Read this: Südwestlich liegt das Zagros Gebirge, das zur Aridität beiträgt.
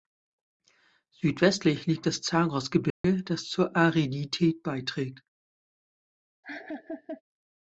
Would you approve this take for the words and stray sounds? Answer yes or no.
no